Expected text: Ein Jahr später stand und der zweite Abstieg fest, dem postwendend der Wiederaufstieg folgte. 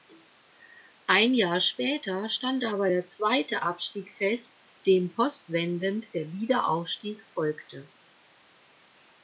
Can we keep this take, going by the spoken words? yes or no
no